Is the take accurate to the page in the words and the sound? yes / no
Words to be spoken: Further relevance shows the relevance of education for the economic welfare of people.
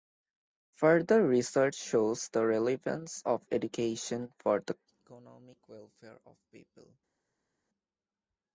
no